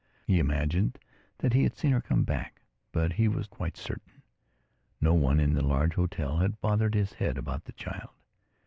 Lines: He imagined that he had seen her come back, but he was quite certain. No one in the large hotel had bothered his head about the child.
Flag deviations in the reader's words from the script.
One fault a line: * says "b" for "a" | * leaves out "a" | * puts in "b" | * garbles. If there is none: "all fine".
all fine